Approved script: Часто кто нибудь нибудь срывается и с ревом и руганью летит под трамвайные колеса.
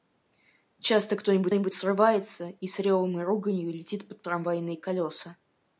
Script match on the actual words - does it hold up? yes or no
yes